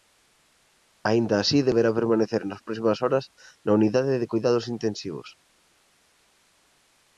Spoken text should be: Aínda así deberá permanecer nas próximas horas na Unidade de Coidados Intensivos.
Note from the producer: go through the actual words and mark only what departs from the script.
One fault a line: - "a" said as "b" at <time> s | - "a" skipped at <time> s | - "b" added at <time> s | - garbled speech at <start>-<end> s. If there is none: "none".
none